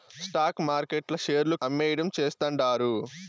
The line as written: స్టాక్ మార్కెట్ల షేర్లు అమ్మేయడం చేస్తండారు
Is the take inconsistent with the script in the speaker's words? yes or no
no